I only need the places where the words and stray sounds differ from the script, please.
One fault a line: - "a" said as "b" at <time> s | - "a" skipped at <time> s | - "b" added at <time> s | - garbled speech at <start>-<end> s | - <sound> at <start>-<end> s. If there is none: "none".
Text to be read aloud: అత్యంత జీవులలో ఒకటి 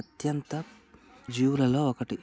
none